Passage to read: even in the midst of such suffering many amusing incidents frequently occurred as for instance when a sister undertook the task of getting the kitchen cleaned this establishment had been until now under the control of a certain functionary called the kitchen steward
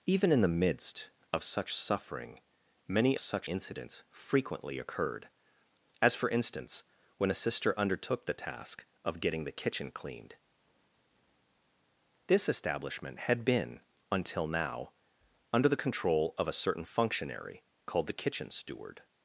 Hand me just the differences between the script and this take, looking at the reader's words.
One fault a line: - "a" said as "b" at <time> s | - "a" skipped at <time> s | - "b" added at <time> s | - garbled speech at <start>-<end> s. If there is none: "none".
- "amusing" said as "such" at 3.2 s